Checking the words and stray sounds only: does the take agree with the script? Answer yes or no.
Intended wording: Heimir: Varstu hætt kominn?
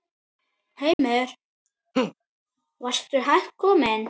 no